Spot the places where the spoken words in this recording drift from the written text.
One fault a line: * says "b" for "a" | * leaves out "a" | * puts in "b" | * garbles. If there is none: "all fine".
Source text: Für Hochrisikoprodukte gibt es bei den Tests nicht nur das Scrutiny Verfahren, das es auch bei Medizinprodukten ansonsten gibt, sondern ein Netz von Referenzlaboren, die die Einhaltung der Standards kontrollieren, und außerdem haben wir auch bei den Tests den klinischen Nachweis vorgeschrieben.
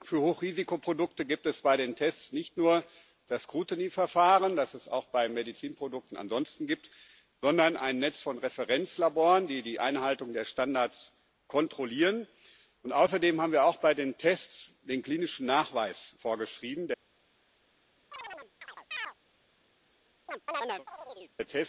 all fine